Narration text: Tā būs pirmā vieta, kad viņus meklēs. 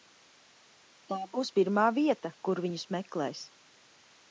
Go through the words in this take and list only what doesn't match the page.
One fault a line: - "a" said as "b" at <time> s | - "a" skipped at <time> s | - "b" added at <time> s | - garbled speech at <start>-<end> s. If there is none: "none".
- "kad" said as "kur" at 2.5 s